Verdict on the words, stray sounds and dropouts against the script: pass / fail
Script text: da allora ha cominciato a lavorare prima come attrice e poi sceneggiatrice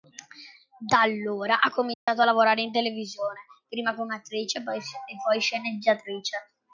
fail